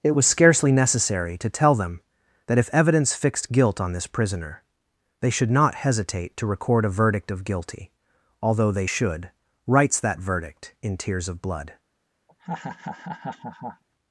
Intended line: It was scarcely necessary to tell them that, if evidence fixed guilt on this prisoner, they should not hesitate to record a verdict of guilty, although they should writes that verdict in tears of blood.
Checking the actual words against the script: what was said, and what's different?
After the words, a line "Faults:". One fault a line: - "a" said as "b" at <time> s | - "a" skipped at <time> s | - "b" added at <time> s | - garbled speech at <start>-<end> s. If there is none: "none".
It was scarcely necessary to tell them that, if evidence fixed guilt on this prisoner, they should not hesitate to record a verdict of guilty, although they should writes that verdict in tears of blood.
Faults:
none